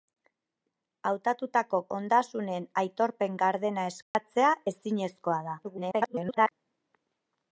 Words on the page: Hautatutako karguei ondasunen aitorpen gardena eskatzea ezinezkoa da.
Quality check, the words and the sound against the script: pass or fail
fail